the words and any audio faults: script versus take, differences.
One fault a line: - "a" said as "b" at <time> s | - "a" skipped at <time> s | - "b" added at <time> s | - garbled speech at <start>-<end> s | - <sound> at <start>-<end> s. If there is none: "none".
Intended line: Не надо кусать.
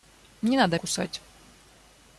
none